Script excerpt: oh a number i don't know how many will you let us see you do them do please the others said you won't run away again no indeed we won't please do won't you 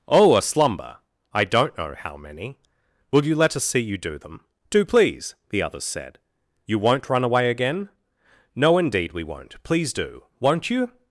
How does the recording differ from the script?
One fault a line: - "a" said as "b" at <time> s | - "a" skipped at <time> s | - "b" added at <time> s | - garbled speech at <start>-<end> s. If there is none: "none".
- "number" said as "slumber" at 0.4 s